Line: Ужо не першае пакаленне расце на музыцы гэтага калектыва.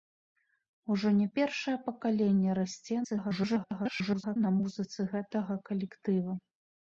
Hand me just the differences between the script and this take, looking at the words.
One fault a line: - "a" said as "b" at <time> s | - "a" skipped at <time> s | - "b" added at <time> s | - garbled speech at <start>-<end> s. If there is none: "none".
- garbled speech at 3.0-4.4 s